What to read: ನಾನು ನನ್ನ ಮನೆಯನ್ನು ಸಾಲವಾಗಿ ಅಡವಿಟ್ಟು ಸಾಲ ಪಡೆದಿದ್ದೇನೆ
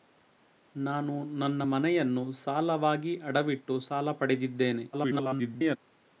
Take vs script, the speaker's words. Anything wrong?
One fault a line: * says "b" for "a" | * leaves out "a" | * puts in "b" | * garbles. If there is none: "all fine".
* garbles